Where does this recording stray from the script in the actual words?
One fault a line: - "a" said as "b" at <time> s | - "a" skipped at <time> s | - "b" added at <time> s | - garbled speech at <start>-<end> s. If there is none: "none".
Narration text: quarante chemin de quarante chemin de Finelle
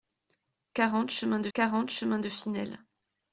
none